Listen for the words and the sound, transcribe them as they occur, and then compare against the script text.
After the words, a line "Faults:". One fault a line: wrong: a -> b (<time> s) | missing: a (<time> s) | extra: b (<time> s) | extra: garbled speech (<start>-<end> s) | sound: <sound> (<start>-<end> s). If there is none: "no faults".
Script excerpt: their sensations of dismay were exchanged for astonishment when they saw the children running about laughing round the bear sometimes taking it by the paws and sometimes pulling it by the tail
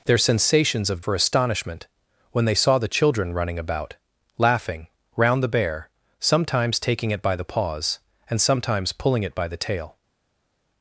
their sensations of for astonishment when they saw the children running about laughing round the bear sometimes taking it by the paws and sometimes pulling it by the tail
Faults:
missing: dismay were exchanged (1.0 s)